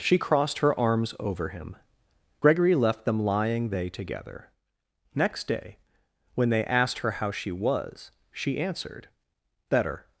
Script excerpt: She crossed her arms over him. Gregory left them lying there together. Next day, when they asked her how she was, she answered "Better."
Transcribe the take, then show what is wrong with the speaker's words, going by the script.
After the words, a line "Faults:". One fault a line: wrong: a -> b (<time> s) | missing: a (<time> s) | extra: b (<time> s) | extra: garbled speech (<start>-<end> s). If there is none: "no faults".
She crossed her arms over him. Gregory left them lying they together. Next day, when they asked her how she was, she answered "Better."
Faults:
wrong: there -> they (3.7 s)